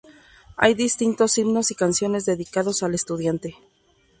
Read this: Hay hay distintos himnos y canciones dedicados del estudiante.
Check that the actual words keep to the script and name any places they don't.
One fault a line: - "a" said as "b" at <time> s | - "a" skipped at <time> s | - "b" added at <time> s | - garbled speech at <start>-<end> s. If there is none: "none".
- "hay" skipped at 0.7 s
- "del" said as "al" at 2.8 s